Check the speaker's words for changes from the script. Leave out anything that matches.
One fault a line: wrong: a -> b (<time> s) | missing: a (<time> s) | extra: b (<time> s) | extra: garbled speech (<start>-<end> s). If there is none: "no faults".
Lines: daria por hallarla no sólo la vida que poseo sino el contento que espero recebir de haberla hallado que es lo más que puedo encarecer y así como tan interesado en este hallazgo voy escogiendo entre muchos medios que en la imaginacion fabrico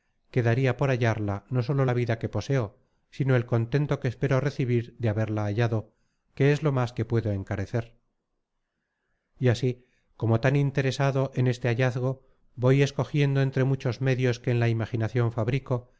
no faults